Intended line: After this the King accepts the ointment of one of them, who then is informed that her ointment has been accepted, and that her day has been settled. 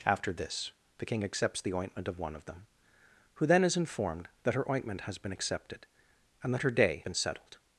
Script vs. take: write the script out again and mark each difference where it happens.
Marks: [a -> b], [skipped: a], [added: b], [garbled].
After this the King accepts the ointment of one of them, who then is informed that her ointment has been accepted, and that her day [skipped: has] been settled.